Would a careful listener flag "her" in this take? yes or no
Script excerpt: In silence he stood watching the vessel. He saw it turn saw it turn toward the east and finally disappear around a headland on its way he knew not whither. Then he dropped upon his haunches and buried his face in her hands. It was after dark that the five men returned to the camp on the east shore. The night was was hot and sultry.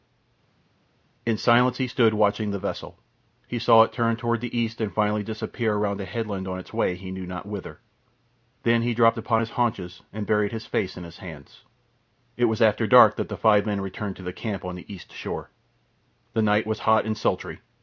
yes